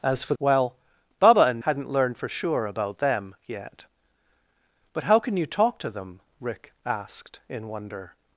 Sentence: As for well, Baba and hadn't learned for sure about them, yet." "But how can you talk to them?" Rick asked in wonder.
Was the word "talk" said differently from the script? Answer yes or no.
no